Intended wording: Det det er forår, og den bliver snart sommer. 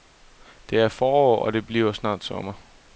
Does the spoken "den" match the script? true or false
false